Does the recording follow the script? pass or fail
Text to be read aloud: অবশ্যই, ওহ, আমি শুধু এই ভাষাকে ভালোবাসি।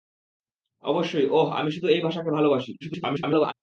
fail